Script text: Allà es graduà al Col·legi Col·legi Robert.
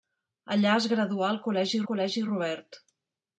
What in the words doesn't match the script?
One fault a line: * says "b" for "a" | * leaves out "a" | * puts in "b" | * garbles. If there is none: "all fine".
all fine